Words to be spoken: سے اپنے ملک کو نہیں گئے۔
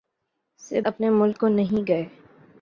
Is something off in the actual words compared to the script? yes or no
no